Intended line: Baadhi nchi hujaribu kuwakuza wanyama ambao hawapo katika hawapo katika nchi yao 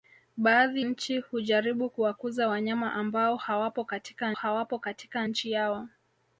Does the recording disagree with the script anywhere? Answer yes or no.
no